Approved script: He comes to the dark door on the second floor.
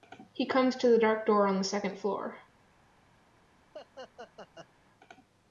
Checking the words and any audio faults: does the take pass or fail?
fail